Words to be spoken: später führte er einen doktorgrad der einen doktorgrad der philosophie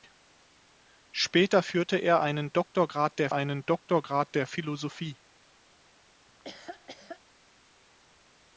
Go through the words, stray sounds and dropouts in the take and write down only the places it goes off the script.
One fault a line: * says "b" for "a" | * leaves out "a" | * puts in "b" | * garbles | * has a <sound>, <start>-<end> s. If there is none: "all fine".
* has a laugh, 6.3-7.2 s